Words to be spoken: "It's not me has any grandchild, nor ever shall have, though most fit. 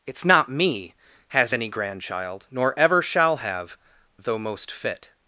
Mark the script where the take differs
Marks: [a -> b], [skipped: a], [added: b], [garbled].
"It's not me has any grandchild, nor ever shall have, though most fit.